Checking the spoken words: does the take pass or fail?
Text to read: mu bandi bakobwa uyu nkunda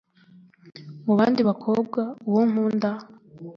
fail